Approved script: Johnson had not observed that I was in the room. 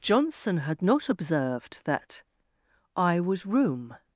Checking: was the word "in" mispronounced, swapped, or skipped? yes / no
yes